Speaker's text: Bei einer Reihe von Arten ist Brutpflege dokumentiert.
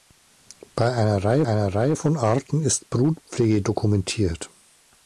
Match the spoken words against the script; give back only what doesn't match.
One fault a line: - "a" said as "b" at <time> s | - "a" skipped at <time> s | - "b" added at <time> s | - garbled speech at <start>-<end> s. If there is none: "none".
- "einer Reihe" added at 1.5 s